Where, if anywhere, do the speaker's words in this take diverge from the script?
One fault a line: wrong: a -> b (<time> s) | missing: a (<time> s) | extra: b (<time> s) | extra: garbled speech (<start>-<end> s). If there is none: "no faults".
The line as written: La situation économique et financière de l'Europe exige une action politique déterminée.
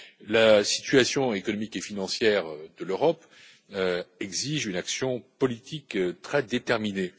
extra: très (6.2 s)